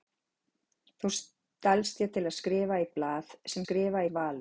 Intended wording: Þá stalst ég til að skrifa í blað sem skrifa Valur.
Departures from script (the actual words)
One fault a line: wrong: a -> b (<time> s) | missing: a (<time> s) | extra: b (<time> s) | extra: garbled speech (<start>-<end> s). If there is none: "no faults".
no faults